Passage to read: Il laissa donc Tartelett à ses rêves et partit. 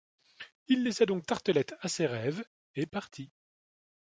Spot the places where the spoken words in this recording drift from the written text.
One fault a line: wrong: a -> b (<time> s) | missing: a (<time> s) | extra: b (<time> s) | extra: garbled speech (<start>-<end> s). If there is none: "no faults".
no faults